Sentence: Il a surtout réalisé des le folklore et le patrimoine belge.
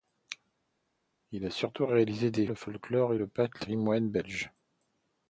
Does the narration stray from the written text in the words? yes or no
no